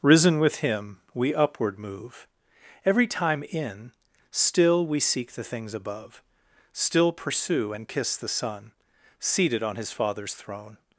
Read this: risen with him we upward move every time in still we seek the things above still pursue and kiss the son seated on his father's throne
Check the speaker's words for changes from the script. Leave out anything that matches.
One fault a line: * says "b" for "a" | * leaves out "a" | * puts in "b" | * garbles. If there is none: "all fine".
all fine